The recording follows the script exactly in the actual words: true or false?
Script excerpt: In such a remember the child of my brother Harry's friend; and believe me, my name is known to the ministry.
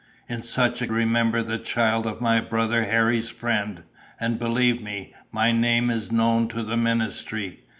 true